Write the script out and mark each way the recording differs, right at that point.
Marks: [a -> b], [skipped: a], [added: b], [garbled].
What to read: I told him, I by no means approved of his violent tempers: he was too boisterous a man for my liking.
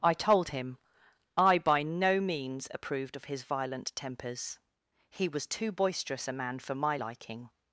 I told him, I by no means approved of his violent tempers: he was too boisterous a man for my liking.